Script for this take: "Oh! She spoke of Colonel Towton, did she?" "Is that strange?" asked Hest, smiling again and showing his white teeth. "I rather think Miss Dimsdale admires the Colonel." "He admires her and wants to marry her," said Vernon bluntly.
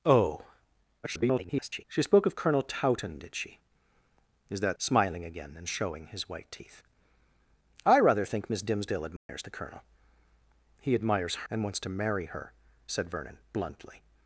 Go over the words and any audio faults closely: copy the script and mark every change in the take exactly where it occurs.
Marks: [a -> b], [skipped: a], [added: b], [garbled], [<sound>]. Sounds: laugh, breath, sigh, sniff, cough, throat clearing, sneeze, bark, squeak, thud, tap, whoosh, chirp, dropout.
"Oh! [garbled] She spoke of Colonel Towton, did she?" "Is that [skipped: strange?" asked Hest,] smiling again and showing his white teeth. "I rather think Miss Dimsdale admires [dropout] the Colonel." "He admires [skipped: her] and wants to marry her," said Vernon bluntly.